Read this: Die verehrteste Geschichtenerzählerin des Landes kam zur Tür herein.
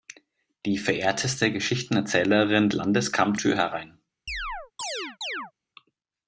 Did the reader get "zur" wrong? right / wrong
wrong